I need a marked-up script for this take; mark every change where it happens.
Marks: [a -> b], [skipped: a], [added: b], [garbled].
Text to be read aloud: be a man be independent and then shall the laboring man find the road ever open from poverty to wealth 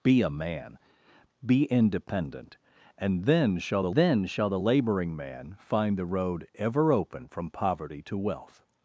be a man be independent and then shall the [added: then shall the] laboring man find the road ever open from poverty to wealth